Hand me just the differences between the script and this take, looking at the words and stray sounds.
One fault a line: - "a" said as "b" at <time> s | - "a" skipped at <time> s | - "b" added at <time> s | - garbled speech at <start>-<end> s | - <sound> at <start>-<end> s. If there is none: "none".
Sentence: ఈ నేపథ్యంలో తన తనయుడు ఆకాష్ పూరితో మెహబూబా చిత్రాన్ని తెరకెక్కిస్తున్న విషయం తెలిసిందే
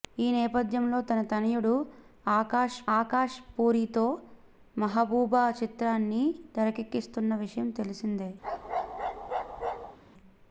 - "ఆకాష్" added at 3.0 s
- bark at 8.4-10.0 s